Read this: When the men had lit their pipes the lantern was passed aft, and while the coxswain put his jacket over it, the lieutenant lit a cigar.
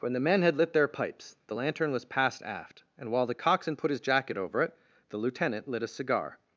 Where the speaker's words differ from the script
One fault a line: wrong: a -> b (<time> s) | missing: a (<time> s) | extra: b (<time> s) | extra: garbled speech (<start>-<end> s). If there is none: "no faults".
no faults